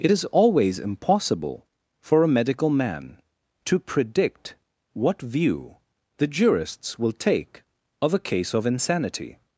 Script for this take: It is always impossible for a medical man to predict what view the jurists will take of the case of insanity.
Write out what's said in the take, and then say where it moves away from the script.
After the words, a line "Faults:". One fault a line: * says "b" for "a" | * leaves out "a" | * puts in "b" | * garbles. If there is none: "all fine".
It is always impossible for a medical man to predict what view the jurists will take of a case of insanity.
Faults:
* says "a" for "the"